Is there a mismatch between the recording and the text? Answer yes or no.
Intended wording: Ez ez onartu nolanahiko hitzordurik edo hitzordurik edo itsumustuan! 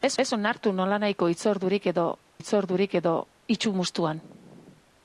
no